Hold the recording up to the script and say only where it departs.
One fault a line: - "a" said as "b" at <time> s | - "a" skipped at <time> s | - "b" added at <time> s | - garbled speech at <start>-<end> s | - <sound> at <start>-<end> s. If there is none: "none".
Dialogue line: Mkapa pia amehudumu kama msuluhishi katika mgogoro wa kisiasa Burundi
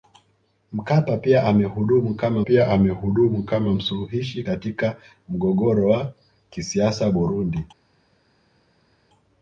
- "pia amehudumu kama" added at 2.4 s